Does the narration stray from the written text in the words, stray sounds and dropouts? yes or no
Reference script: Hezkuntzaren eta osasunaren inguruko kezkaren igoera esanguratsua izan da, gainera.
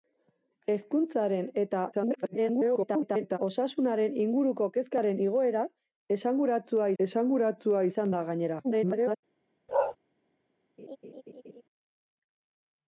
yes